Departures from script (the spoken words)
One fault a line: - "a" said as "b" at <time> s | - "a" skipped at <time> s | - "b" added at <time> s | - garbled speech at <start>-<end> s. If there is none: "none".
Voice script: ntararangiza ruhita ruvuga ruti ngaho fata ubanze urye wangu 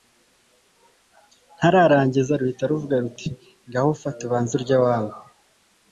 none